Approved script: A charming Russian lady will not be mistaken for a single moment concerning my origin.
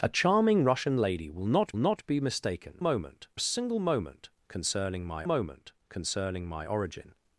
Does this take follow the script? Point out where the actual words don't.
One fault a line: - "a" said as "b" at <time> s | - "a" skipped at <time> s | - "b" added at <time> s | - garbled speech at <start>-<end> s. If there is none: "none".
- "not" added at 1.8 s
- "for" said as "moment" at 2.8 s
- "moment concerning my" added at 5.2 s